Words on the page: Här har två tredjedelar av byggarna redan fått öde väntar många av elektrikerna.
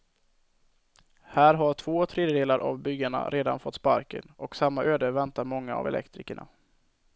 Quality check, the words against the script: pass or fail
fail